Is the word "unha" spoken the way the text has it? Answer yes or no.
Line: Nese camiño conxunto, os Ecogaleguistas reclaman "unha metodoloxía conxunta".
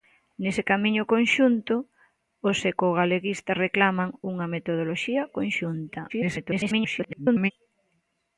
yes